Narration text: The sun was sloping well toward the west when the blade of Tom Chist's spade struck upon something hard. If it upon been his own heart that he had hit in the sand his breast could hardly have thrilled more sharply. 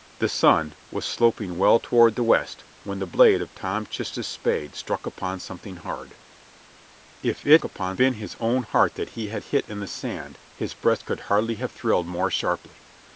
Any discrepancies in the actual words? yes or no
no